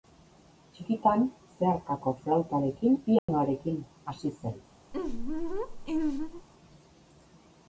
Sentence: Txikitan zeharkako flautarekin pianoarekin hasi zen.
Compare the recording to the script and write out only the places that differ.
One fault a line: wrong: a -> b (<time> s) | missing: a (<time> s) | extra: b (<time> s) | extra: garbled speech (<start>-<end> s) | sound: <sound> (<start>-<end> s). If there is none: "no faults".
sound: dropout (3.2-3.3 s)
sound: laugh (4.9-6.5 s)